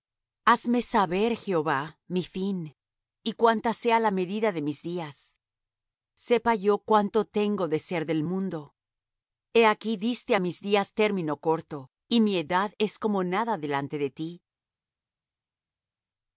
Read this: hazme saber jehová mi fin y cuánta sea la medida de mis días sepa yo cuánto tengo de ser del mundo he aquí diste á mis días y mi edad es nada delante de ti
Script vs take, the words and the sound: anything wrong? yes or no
yes